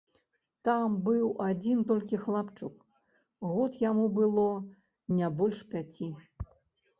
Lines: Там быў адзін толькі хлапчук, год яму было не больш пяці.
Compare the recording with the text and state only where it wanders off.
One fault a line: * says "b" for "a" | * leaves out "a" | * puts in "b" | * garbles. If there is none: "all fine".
all fine